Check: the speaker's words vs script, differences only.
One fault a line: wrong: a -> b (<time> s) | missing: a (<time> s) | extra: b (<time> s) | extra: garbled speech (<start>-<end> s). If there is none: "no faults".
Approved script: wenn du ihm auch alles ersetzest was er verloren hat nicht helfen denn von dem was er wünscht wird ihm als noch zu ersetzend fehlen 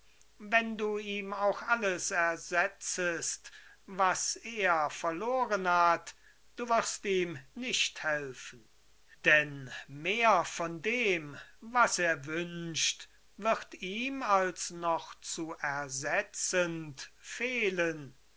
extra: du wirst ihm (6.5 s)
extra: mehr (9.9 s)